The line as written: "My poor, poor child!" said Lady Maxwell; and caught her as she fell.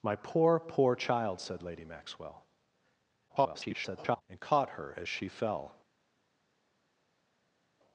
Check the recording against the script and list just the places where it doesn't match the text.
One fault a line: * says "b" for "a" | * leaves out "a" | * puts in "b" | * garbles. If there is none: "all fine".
* garbles